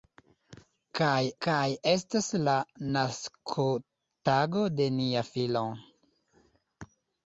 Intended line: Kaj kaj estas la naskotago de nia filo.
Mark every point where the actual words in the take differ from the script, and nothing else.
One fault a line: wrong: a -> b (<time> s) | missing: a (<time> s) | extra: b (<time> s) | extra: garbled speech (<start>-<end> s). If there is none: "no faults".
no faults